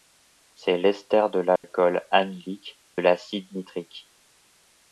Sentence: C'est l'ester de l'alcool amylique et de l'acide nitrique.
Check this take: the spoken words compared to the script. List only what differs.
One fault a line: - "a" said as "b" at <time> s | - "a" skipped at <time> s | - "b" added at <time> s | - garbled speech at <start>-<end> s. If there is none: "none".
- "et" skipped at 2.8 s